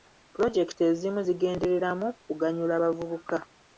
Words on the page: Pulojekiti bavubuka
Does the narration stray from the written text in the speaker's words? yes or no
yes